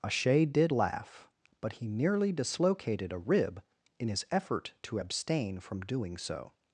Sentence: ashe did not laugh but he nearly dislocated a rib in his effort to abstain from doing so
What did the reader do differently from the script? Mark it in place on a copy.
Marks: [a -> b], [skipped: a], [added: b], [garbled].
ashe did [skipped: not] laugh but he nearly dislocated a rib in his effort to abstain from doing so